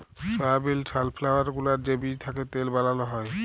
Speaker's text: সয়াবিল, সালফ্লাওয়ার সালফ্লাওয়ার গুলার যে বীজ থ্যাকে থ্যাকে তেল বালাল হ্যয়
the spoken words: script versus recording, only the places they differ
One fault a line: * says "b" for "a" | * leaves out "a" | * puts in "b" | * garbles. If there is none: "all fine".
* leaves out "সালফ্লাওয়ার"
* leaves out "থ্যাকে"